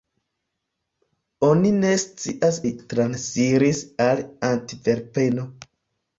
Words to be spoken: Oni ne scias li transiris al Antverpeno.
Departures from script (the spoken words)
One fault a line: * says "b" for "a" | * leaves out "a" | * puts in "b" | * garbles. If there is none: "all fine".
all fine